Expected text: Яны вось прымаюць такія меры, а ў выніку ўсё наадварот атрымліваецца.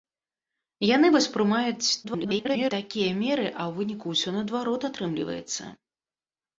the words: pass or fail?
fail